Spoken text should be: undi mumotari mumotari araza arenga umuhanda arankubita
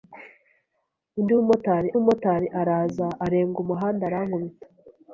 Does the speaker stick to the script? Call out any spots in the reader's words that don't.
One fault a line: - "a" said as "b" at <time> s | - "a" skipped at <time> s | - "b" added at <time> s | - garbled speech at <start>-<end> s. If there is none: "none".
none